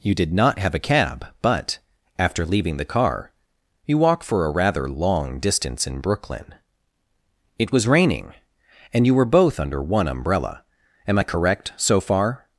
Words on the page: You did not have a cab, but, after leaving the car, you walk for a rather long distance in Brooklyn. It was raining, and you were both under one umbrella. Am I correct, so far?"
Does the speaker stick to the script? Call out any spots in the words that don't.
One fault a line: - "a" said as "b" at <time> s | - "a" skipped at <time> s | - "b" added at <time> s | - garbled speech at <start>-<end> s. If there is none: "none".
none